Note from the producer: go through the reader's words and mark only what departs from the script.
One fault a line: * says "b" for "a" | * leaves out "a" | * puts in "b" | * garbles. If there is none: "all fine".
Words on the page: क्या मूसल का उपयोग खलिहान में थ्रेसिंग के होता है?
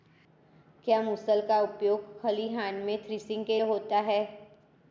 all fine